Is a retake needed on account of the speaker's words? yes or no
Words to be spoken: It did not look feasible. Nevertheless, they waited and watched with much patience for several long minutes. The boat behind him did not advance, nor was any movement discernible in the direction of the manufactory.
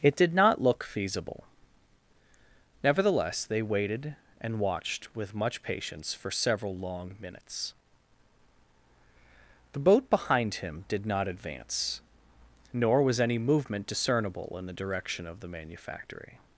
no